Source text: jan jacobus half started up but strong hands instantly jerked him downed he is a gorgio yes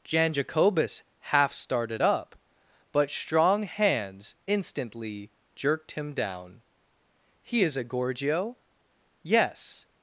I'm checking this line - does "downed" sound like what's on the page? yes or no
no